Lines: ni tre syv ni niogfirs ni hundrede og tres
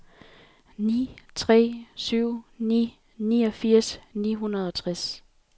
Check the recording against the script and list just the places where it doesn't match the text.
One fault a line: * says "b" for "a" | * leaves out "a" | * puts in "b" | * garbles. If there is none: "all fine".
all fine